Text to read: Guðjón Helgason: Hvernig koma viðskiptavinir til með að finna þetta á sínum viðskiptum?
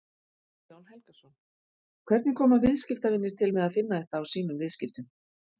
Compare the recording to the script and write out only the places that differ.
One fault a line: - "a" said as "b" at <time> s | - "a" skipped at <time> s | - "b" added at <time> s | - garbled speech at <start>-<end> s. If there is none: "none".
none